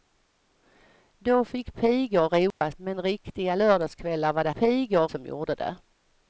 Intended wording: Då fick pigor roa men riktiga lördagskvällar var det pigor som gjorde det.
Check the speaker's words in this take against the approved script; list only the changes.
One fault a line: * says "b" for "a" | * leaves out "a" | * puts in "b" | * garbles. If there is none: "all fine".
all fine